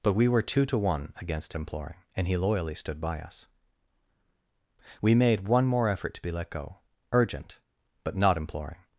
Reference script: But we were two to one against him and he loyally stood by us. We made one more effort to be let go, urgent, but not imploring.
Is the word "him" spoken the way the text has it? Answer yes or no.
no